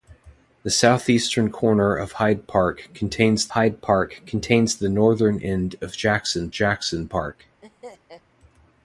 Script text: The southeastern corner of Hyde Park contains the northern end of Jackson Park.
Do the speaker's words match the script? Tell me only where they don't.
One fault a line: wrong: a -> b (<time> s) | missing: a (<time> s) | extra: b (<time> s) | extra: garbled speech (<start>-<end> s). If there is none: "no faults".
extra: Hyde Park contains (3.5 s)
extra: Jackson (6.5 s)